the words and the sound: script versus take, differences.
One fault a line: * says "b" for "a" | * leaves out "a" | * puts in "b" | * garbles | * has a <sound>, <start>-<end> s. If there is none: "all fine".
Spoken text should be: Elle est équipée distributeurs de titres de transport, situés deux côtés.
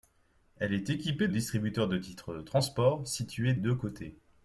all fine